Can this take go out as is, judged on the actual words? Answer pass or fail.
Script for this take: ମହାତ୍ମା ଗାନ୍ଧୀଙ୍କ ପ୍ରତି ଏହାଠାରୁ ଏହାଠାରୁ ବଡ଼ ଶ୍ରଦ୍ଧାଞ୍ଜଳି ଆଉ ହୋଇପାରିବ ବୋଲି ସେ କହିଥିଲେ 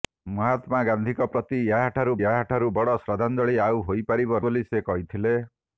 pass